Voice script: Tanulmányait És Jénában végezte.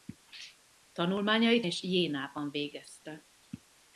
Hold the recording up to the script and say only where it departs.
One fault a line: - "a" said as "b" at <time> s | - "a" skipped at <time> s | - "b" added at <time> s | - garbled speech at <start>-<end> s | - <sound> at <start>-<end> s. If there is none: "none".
none